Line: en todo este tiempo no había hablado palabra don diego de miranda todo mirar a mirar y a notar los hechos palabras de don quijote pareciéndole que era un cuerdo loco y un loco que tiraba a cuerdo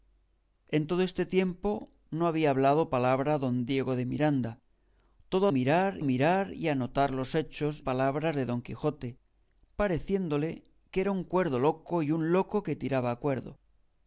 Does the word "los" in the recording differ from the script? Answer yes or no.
no